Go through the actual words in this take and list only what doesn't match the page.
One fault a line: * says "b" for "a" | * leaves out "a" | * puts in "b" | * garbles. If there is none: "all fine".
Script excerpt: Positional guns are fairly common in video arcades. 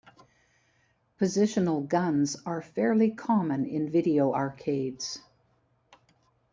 all fine